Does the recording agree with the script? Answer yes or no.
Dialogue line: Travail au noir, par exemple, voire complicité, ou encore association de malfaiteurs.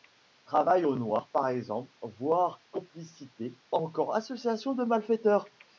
no